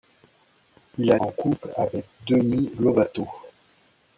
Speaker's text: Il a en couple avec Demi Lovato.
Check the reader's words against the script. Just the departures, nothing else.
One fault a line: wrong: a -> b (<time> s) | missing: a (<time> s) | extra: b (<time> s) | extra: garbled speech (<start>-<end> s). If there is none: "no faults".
no faults